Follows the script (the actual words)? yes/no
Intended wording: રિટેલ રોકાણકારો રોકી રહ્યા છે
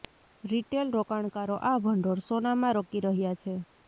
no